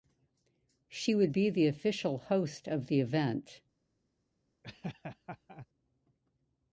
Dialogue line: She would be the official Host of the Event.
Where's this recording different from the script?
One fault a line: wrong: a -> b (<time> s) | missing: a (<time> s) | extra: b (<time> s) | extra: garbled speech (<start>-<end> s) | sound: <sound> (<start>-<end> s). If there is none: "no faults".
sound: laugh (4.6-5.7 s)